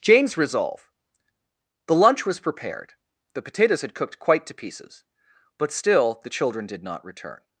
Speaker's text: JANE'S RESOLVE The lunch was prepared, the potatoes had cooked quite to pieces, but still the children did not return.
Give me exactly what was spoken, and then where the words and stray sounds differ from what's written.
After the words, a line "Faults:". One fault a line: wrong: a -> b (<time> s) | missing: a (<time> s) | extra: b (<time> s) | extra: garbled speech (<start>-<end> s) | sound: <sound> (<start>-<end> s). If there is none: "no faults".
JANE'S RESOLVE The lunch was prepared, the potatoes had cooked quite to pieces, but still the children did not return.
Faults:
no faults